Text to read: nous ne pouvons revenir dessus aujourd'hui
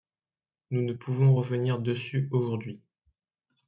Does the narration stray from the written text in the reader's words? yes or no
no